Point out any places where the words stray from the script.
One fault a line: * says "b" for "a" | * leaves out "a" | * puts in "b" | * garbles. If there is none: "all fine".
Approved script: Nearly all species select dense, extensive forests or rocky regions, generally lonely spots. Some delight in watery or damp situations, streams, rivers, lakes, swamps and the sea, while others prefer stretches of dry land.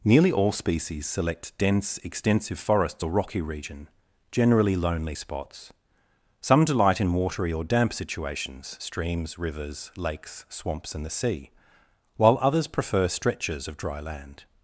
* says "region" for "regions"